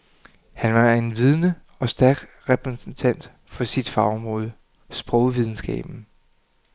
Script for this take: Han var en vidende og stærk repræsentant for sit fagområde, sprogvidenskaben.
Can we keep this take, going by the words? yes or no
yes